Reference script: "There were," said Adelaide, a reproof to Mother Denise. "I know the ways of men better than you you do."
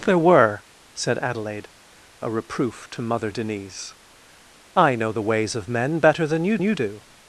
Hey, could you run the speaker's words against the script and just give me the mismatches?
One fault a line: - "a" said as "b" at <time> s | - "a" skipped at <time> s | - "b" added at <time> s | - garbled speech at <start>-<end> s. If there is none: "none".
none